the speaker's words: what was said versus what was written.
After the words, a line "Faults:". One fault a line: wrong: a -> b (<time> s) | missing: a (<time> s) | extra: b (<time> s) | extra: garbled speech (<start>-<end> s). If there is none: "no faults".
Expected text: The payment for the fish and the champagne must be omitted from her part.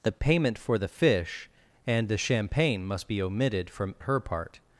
The payment for the fish and the champagne must be omitted from her part.
Faults:
no faults